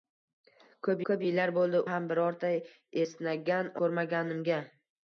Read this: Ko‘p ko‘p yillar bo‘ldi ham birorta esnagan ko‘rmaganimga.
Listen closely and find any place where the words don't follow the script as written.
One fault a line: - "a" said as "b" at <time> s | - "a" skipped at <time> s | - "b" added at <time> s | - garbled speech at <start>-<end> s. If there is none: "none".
none